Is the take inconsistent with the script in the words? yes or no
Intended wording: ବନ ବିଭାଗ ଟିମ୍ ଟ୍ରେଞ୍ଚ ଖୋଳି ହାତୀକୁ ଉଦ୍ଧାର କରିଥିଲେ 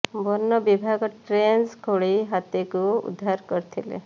yes